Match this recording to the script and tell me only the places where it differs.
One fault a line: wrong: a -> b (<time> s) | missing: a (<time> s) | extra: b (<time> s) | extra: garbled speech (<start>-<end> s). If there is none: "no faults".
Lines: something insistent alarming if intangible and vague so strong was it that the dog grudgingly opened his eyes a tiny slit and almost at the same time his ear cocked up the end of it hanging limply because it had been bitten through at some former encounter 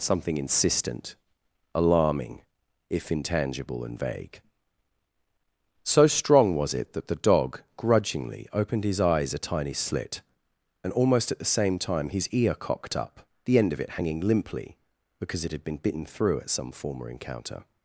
no faults